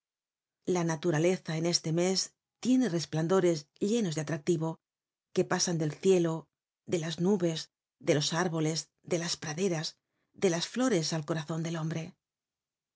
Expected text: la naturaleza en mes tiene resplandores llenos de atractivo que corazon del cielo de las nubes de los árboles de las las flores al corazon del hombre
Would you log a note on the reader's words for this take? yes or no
yes